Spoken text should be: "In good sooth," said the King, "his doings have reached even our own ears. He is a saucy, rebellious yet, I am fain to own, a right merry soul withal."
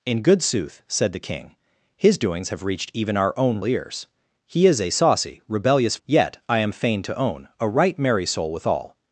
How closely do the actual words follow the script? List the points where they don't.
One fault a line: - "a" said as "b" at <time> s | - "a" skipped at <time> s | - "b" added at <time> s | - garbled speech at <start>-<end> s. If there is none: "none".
none